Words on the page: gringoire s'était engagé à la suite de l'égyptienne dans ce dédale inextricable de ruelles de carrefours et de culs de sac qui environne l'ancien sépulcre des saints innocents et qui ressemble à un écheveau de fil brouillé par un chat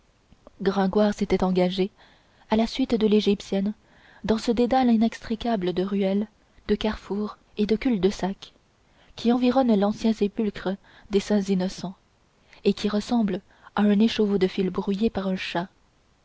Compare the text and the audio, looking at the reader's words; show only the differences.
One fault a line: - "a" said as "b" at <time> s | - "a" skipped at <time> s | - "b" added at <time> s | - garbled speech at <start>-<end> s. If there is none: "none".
none